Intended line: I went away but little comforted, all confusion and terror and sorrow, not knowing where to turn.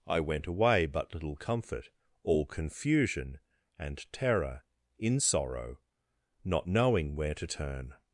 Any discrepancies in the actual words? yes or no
yes